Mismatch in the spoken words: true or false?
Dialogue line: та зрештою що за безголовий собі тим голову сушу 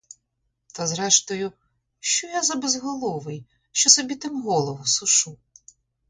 true